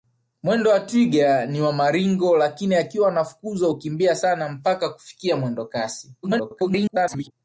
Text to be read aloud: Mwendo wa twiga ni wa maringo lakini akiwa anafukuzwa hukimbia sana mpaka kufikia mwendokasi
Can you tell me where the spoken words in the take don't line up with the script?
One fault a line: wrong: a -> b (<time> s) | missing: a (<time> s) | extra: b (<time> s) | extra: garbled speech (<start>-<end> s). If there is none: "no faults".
extra: garbled speech (6.2-7.3 s)